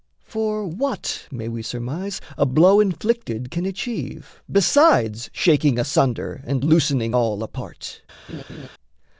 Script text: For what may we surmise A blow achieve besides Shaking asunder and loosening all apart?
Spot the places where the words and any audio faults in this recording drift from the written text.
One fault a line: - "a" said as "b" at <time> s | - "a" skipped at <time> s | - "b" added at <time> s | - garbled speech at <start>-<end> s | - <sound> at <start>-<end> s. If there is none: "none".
- "inflicted can" added at 2.8 s
- laugh at 8.3-8.7 s